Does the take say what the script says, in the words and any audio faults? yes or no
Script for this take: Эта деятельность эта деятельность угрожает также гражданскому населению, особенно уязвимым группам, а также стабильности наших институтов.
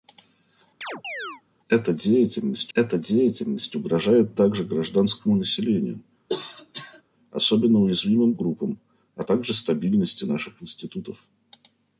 no